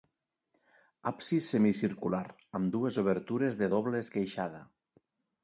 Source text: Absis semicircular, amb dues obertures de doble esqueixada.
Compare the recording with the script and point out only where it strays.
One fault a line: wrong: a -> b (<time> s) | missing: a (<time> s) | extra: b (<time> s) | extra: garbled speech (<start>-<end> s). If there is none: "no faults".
no faults